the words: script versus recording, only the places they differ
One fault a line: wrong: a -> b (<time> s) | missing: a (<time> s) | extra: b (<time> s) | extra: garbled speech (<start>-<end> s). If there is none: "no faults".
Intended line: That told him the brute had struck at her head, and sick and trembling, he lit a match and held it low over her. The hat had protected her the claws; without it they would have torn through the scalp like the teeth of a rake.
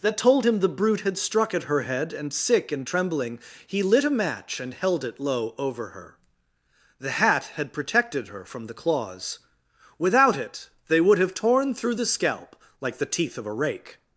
extra: from (8.4 s)